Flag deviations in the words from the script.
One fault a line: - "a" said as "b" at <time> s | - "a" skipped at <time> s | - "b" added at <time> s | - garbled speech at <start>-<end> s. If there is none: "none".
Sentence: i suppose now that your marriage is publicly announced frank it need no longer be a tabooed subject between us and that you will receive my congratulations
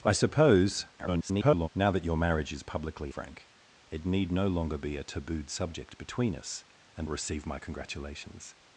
- garbled speech at 1.0-1.7 s
- "announced" skipped at 3.1 s
- "that you will" skipped at 7.1 s